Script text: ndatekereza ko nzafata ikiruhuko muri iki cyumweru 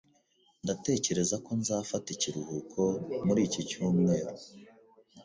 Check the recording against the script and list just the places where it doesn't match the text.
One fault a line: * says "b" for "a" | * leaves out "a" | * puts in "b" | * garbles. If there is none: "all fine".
all fine